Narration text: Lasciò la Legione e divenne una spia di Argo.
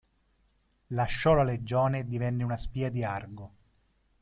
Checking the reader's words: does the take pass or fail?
pass